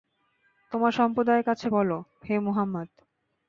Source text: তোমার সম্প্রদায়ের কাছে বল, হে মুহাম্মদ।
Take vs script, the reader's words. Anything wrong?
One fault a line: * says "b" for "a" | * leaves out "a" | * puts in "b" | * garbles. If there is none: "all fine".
all fine